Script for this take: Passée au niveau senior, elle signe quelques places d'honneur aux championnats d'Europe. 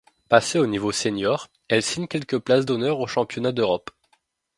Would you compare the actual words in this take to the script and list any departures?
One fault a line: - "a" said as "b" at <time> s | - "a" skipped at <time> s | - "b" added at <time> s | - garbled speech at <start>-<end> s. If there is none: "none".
none